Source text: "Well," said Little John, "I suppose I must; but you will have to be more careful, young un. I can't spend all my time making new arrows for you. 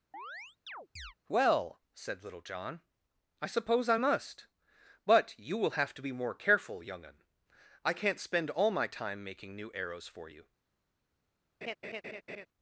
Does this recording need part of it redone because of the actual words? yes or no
no